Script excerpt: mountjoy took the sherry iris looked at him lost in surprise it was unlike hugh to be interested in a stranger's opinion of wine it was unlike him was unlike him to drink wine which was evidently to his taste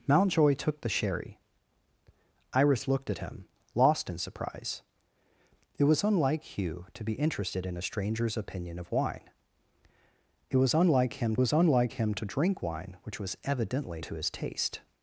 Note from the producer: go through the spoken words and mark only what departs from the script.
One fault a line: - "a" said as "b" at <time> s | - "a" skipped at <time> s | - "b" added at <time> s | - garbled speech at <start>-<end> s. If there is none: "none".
none